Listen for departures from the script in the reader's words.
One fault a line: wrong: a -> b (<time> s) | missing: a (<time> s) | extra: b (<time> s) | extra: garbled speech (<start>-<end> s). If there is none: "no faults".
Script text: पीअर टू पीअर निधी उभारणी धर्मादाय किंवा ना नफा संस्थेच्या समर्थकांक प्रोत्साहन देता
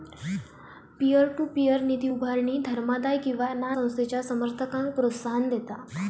missing: नफा (3.7 s)